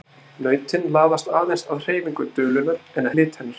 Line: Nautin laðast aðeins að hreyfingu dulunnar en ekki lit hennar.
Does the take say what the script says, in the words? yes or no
no